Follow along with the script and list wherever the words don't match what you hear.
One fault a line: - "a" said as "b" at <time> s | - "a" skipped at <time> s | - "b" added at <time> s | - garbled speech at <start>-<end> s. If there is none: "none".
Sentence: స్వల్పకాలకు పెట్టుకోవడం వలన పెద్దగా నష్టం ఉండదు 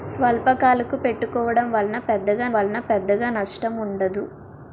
- "వలన పెద్దగా" added at 2.5 s